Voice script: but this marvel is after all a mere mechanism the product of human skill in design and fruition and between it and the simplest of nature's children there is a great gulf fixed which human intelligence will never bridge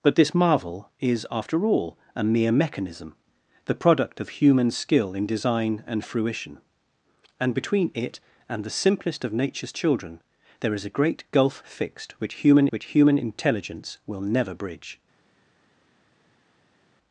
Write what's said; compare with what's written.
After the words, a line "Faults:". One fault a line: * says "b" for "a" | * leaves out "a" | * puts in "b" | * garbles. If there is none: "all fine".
but this marvel is after all a mere mechanism the product of human skill in design and fruition and between it and the simplest of nature's children there is a great gulf fixed which human which human intelligence will never bridge
Faults:
* puts in "which human"